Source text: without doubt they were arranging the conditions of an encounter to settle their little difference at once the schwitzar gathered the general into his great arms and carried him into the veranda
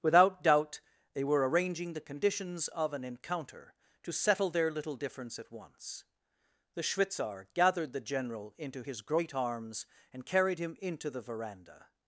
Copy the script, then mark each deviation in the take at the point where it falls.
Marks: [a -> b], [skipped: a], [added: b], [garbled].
without doubt they were arranging the conditions of an encounter to settle their little difference at once the schwitzar gathered the general into his great arms and carried him into the veranda